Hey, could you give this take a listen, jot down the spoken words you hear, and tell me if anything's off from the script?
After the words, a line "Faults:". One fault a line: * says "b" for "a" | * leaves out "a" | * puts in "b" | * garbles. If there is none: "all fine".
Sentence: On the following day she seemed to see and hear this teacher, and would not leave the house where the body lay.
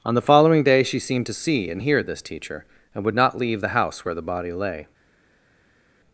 On the following day she seemed to see and hear this teacher, and would not leave the house where the body lay.
Faults:
all fine